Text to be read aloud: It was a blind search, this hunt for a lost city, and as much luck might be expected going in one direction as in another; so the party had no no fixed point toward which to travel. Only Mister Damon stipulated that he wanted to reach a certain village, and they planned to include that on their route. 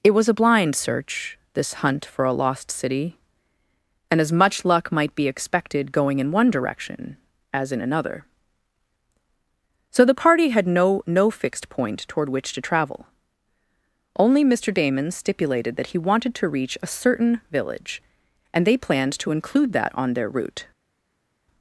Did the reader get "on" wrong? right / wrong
right